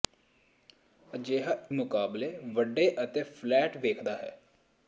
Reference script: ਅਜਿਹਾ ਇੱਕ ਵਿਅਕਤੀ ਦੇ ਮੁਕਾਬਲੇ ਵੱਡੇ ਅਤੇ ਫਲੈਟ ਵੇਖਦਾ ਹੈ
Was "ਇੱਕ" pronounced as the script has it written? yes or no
no